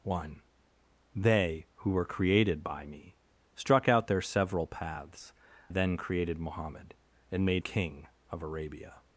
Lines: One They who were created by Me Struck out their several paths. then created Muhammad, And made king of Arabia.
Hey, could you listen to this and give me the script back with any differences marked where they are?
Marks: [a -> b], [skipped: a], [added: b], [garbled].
One They who were created by Me Struck out their several paths. then created Muhammad, And made king of Arabia.